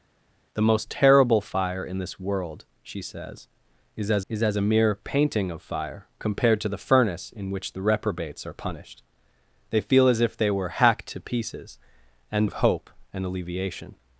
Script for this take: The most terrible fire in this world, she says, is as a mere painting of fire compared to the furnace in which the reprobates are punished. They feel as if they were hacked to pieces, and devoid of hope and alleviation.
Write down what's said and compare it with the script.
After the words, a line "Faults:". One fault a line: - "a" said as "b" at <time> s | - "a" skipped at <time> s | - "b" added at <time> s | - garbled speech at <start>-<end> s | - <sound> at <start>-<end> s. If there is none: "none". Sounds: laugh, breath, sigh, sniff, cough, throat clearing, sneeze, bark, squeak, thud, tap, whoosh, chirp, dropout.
The most terrible fire in this world, she says, is as is as a mere painting of fire compared to the furnace in which the reprobates are punished. They feel as if they were hacked to pieces, and of hope and alleviation.
Faults:
- "is as" added at 4.3 s
- "devoid" skipped at 12.5 s